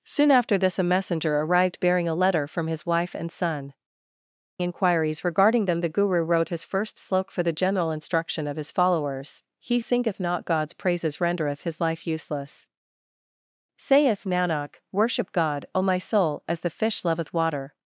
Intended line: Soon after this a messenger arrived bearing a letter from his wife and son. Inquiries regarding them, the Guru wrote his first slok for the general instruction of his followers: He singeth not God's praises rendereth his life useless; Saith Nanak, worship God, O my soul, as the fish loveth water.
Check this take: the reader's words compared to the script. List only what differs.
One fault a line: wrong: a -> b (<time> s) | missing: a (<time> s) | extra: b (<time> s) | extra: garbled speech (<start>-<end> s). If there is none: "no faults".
no faults